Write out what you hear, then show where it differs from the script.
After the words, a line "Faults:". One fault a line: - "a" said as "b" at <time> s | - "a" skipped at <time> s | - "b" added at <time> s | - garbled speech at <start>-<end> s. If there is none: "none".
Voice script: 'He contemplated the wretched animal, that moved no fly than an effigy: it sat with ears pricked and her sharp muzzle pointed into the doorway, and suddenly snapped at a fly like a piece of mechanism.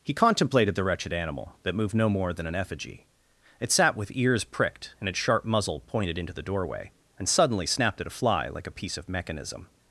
'He contemplated the wretched animal, that moved no more than an effigy: it sat with ears pricked and its sharp muzzle pointed into the doorway, and suddenly snapped at a fly like a piece of mechanism.
Faults:
- "fly" said as "more" at 2.1 s
- "her" said as "its" at 5.1 s